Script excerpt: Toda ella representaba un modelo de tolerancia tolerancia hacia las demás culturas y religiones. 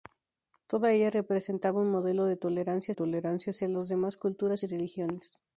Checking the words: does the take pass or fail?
pass